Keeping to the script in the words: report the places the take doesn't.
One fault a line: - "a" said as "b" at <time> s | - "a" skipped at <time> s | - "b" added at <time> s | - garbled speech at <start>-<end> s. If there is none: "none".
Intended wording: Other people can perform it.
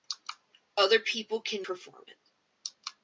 none